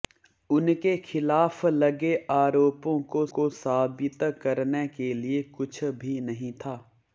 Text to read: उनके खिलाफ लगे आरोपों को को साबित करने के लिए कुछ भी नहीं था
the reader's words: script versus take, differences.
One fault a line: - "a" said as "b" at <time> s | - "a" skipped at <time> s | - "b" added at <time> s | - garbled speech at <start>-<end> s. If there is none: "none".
none